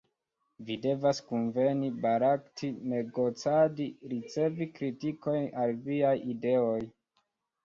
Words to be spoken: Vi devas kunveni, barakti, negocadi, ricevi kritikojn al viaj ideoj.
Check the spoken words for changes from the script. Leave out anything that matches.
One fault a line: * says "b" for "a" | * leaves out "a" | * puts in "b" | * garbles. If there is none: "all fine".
all fine